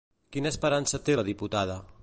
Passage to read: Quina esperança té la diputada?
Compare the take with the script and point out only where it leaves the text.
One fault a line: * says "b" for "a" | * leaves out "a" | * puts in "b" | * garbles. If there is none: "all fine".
all fine